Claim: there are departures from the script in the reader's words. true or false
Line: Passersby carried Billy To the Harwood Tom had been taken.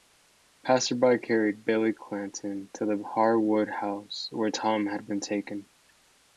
true